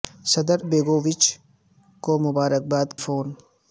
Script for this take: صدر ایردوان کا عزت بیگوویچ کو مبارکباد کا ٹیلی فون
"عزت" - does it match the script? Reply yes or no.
no